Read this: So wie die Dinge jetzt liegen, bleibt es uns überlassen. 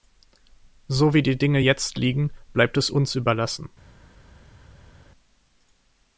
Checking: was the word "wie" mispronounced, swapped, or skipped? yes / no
no